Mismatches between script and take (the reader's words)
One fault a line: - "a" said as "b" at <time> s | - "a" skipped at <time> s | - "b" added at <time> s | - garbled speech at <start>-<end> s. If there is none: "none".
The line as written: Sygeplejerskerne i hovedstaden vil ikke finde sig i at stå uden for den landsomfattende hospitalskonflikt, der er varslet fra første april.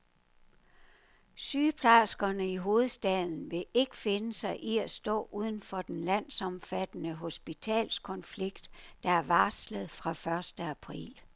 none